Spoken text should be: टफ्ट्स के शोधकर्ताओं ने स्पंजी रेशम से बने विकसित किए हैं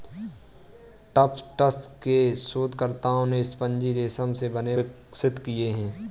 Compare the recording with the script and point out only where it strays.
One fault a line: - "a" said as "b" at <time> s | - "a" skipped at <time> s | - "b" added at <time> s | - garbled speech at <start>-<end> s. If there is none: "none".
none